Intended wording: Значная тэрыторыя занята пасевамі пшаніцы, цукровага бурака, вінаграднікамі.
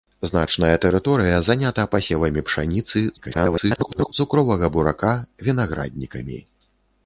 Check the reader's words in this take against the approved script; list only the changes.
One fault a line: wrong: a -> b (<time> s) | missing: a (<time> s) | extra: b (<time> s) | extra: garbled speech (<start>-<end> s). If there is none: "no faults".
extra: garbled speech (3.2-4.1 s)